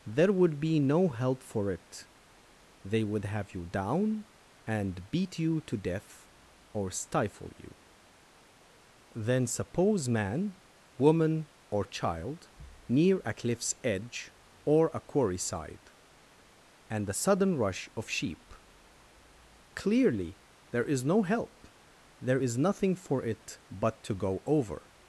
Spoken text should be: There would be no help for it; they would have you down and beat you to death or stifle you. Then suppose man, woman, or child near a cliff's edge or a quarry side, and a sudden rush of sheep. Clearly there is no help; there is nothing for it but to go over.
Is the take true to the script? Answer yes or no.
yes